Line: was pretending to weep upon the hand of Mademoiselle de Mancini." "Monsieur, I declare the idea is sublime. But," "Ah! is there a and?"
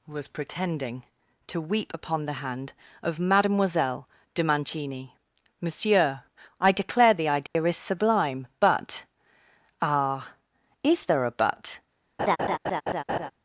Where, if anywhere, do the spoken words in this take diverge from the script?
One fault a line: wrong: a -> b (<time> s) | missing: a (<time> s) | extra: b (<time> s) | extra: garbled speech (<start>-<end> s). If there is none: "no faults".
wrong: and -> but (11.3 s)